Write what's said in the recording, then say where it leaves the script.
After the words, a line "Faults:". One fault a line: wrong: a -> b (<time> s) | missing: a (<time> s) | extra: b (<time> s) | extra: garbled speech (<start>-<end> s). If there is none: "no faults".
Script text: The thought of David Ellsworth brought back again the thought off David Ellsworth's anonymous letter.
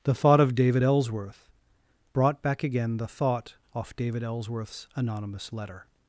The thought of David Ellsworth brought back again the thought off David Ellsworth's anonymous letter.
Faults:
no faults